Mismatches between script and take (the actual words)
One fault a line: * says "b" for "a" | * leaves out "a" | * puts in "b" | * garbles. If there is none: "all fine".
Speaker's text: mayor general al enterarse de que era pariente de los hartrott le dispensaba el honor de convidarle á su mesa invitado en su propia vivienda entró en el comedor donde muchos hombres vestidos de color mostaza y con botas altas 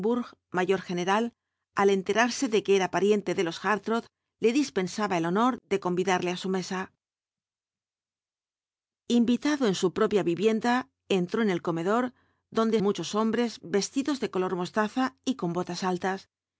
all fine